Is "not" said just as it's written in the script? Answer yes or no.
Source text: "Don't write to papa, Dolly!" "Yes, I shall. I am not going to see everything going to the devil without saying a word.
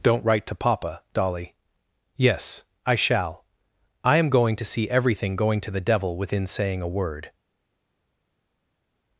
no